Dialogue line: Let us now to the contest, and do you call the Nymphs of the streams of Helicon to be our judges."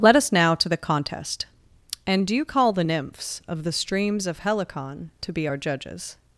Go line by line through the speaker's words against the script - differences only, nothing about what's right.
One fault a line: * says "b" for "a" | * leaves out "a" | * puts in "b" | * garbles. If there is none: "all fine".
all fine